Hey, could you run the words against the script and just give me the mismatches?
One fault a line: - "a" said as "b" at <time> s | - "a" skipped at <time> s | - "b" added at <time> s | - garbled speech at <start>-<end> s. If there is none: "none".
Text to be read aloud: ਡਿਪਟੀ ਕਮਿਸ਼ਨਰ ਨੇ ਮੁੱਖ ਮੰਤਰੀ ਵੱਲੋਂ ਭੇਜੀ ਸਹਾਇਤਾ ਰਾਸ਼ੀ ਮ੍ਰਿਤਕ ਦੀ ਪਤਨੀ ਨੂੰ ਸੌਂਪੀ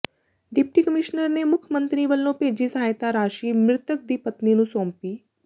none